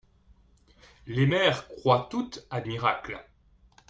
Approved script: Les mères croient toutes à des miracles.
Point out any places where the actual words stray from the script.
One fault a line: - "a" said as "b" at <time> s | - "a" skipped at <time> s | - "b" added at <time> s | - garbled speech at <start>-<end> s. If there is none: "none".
- "des" skipped at 2.6 s